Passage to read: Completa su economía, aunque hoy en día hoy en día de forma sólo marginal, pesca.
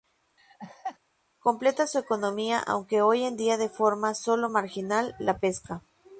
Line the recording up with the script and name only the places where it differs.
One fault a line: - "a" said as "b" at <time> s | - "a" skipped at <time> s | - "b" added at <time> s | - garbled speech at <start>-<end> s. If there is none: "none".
- "hoy en día" skipped at 3.6 s
- "la" added at 5.2 s